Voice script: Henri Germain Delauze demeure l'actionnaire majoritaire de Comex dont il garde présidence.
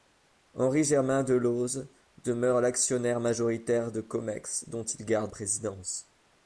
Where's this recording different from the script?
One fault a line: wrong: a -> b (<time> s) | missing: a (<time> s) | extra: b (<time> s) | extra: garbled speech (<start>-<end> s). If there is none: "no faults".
no faults